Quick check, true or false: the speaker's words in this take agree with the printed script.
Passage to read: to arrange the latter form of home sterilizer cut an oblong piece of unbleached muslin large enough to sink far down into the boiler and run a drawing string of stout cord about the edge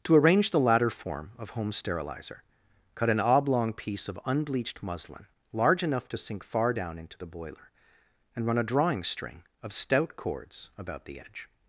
false